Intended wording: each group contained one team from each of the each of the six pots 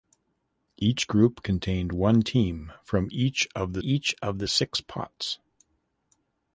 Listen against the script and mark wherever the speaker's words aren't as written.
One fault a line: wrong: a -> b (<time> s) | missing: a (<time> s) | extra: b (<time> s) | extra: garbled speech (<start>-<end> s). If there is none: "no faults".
no faults